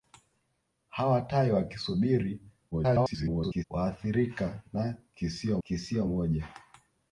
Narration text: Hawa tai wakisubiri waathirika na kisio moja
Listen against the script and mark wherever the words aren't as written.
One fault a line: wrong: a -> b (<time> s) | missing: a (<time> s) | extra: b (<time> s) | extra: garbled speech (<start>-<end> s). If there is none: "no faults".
extra: garbled speech (2.7-3.6 s)
extra: kisio (5.6 s)